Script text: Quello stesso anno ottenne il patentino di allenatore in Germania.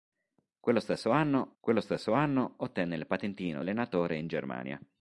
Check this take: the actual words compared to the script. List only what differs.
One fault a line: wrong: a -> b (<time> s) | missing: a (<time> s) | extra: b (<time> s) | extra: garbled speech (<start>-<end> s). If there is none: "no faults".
extra: quello stesso anno (1.6 s)
missing: di (3.6 s)